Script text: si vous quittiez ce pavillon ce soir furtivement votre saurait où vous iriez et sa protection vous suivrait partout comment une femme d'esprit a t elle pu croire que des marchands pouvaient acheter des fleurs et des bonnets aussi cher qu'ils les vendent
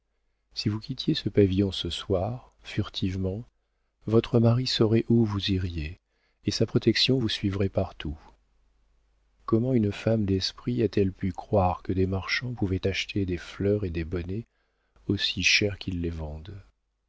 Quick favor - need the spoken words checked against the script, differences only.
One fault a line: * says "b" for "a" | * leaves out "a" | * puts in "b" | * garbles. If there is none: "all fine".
* puts in "mari"